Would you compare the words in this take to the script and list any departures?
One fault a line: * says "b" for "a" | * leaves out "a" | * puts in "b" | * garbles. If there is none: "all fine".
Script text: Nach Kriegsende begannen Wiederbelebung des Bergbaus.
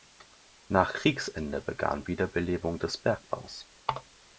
all fine